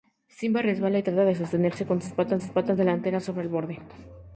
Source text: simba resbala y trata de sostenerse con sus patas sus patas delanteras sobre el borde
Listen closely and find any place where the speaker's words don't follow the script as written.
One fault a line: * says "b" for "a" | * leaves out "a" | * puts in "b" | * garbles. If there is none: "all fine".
all fine